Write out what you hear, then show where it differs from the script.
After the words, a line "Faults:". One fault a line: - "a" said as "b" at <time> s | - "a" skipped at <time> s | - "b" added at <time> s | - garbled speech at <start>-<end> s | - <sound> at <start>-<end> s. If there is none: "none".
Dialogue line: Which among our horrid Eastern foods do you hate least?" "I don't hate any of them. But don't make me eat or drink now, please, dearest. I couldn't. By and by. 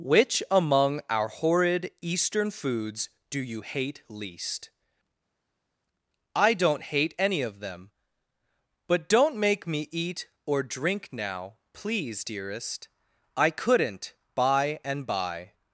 Which among our horrid Eastern foods do you hate least?" "I don't hate any of them. But don't make me eat or drink now, please, dearest. I couldn't. By and by.
Faults:
none